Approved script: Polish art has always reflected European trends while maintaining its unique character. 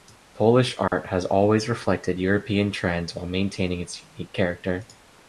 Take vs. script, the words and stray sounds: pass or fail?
fail